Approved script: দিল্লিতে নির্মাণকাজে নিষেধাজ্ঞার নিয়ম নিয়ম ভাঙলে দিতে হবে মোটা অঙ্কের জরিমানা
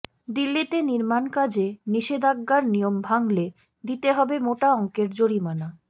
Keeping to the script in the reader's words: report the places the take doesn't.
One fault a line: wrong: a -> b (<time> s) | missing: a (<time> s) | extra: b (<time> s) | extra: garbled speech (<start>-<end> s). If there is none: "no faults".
missing: নিয়ম (2.9 s)